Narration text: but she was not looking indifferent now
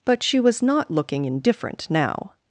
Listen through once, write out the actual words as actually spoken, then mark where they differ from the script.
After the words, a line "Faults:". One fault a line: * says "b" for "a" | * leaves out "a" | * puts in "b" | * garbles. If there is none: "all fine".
but she was not looking indifferent now
Faults:
all fine